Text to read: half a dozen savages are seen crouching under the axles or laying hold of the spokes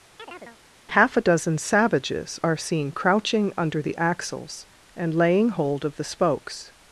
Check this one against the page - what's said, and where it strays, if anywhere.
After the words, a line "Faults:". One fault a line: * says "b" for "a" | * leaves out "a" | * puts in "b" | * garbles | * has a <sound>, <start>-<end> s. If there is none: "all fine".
half a dozen savages are seen crouching under the axles and laying hold of the spokes
Faults:
* has a chirp, 0.2-0.6 s
* says "and" for "or"